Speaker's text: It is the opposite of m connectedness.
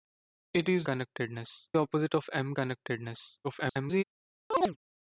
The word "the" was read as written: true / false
false